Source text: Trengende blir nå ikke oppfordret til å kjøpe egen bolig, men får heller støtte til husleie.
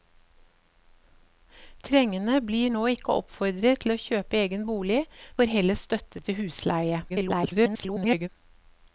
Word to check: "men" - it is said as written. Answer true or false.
false